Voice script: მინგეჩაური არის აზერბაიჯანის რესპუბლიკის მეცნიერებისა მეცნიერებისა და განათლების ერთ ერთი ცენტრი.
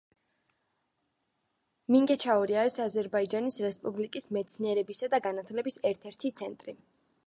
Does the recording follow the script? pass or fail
fail